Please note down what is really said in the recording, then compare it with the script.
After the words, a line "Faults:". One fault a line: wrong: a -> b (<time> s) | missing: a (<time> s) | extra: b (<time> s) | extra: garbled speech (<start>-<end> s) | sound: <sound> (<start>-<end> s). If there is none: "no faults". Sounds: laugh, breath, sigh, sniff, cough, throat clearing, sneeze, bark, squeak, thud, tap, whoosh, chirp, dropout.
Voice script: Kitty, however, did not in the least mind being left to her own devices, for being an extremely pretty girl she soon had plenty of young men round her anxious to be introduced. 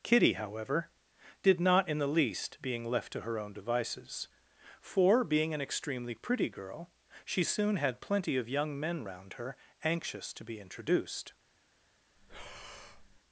Kitty, however, did not in the least being left to her own devices, for being an extremely pretty girl she soon had plenty of young men round her anxious to be introduced.
Faults:
missing: mind (2.6 s)
sound: breath (12.2-13.2 s)